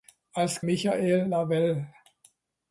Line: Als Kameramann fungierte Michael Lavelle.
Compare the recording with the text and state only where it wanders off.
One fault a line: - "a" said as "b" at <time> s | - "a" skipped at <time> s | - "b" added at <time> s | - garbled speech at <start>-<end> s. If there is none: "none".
- "Kameramann fungierte" skipped at 0.6 s